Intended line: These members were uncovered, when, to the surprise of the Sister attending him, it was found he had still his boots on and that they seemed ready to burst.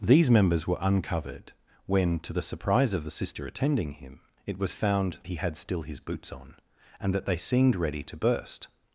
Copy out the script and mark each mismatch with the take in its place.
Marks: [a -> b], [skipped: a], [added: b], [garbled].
These members were uncovered, when, to the surprise of the Sister attending him, it was found he had still his boots on and that they seemed ready to burst.